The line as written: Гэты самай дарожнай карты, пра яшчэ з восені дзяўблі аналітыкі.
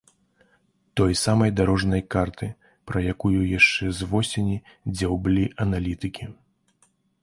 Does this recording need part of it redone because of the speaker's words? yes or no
yes